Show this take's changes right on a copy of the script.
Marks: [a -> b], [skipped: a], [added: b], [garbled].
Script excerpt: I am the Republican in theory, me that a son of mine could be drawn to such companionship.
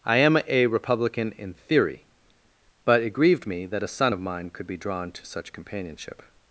I am [the -> a] Republican in theory, [added: but it grieved] me that a son of mine could be drawn to such companionship.